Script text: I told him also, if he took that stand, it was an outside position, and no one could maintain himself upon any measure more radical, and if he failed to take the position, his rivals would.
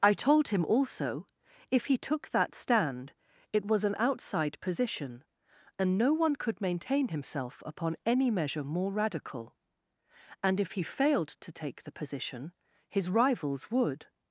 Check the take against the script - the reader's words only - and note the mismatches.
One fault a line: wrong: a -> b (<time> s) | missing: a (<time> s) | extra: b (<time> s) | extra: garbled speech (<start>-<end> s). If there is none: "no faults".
no faults